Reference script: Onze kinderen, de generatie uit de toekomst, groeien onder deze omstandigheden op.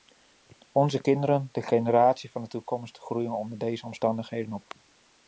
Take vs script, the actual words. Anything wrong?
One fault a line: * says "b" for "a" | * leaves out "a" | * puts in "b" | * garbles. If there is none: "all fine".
* says "van" for "uit"